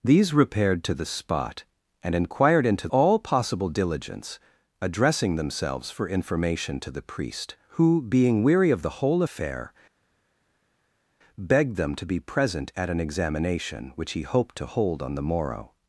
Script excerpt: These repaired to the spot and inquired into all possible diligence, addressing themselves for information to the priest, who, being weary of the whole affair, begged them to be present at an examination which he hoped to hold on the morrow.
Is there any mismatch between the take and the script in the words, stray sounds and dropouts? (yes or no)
no